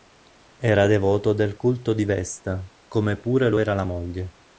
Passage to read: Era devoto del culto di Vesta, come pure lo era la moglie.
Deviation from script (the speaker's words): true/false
false